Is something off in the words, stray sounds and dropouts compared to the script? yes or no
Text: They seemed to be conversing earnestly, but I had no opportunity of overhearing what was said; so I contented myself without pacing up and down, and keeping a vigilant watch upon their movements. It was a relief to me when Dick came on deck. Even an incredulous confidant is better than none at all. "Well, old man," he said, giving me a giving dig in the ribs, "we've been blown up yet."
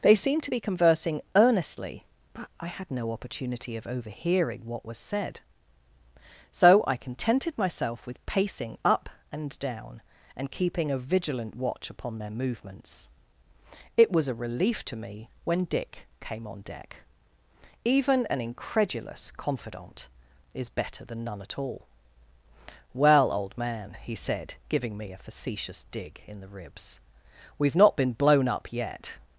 yes